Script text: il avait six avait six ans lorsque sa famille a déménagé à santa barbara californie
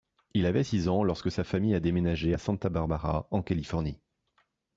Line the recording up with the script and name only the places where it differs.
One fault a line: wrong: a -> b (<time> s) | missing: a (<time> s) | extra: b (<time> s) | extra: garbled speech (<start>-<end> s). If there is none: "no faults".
missing: avait six (0.9 s)
extra: en (3.3 s)